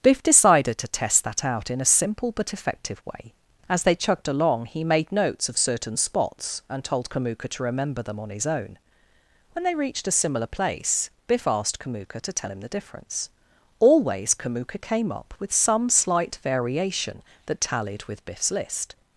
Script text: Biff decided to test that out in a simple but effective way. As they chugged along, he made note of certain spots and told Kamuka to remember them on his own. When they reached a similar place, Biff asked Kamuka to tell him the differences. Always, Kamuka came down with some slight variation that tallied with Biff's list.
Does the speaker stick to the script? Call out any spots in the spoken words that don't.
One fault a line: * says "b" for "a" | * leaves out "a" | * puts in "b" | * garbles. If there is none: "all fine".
* says "notes" for "note"
* says "difference" for "differences"
* says "up" for "down"